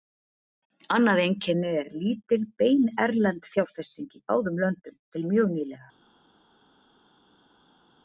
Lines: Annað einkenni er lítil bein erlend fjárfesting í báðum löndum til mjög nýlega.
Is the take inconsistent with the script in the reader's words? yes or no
no